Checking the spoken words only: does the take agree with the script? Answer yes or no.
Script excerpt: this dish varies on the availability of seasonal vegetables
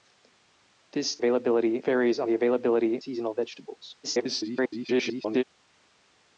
no